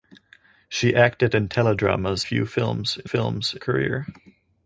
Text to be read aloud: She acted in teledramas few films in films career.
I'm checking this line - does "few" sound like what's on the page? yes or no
yes